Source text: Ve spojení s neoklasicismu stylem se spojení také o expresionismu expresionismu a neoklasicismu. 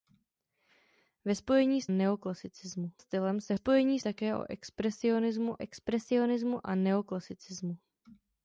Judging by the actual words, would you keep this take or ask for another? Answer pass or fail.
pass